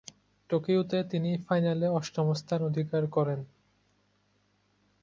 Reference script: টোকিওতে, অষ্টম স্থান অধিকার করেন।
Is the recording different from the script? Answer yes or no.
yes